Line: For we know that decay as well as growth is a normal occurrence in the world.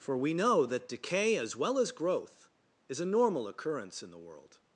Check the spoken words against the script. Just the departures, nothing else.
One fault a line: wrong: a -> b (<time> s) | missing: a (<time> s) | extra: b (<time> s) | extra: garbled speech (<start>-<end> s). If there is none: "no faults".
no faults